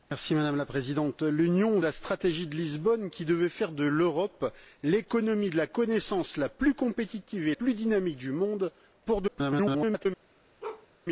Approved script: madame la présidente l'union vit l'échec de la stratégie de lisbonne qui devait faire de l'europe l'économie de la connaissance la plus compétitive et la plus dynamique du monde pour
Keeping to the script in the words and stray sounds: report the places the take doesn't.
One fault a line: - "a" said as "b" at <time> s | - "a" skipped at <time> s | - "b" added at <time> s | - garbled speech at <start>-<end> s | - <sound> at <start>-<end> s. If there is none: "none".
- "vit l'échec de" skipped at 1.8 s
- "la" skipped at 7.5 s
- garbled speech at 9.3-10.1 s
- bark at 10.6-10.9 s